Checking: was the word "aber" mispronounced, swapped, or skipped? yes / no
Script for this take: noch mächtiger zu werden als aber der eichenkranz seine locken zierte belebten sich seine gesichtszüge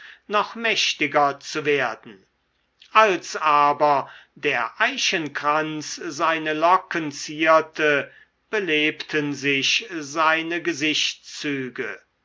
no